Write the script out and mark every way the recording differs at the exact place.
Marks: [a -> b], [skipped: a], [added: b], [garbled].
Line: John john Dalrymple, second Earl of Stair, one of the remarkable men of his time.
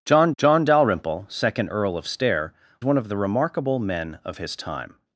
John john Dalrymple, second Earl of Stair, one of the remarkable men of his time.